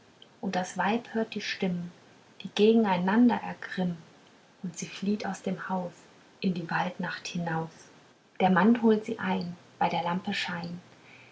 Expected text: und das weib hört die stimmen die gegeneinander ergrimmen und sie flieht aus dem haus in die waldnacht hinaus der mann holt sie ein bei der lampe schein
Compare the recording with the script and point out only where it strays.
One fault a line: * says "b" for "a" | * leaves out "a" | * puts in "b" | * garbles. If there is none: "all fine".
all fine